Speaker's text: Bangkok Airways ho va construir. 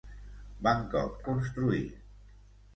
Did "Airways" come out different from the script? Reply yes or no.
yes